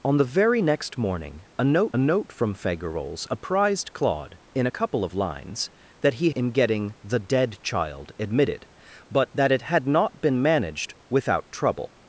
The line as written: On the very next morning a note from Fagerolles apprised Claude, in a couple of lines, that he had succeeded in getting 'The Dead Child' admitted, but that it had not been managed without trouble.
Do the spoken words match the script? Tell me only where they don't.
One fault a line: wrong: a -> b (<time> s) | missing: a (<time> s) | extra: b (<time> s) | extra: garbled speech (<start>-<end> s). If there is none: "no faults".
extra: note (2.0 s)
missing: had succeeded (6.3 s)